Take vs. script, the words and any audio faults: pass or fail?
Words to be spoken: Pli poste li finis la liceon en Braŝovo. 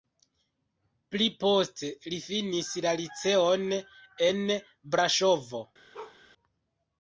fail